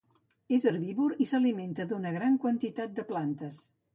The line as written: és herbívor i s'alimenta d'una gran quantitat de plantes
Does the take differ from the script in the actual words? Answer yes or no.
no